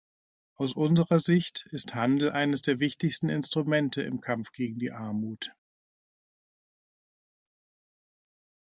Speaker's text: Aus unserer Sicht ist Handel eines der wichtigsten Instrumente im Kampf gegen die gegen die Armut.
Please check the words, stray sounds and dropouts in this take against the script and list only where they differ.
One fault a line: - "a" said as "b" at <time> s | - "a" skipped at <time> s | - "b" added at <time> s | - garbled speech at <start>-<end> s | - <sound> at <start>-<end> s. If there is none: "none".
- "gegen die" skipped at 4.9 s